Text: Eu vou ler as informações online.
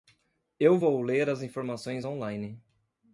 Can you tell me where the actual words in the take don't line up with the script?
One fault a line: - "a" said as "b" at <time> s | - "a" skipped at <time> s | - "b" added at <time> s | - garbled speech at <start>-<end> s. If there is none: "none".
none